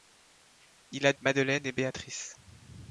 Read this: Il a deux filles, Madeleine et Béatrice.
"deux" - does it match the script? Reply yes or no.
no